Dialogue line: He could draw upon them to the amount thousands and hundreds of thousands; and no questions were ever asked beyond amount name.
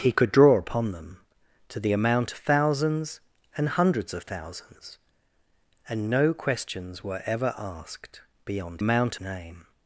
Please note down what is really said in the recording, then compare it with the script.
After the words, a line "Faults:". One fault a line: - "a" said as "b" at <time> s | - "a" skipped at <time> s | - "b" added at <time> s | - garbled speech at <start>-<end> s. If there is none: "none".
He could draw upon them to the amount thousands and hundreds of thousands; and no questions were ever asked beyond amount name.
Faults:
none